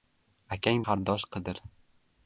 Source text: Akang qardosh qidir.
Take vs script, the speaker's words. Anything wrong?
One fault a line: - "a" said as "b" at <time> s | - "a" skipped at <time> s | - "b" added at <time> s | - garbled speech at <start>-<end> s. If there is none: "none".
none